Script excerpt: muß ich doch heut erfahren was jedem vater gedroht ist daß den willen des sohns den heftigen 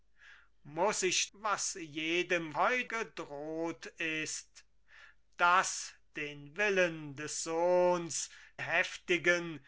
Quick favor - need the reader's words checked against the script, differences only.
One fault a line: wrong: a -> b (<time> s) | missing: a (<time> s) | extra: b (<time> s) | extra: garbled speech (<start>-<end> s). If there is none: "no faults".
missing: doch heut erfahren (1.3 s)
wrong: vater -> heut (2.6 s)
missing: den (8.3 s)